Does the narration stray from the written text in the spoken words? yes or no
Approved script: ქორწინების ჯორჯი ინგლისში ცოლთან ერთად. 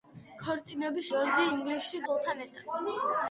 no